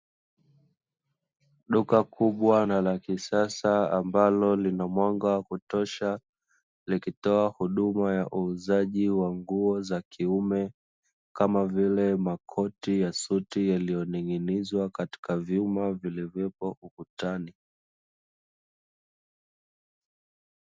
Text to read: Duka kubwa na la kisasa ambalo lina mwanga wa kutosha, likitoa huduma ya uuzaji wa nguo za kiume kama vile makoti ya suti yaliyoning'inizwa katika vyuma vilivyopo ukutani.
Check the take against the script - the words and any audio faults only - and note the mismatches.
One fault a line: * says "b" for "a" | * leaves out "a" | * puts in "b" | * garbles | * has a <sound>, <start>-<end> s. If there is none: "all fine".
all fine